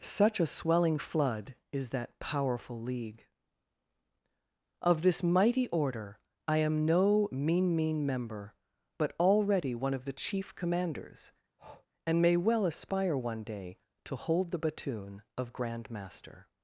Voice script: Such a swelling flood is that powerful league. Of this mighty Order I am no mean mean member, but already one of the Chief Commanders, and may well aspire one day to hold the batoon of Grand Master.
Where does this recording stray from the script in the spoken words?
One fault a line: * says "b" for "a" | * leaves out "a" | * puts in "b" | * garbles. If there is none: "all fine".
all fine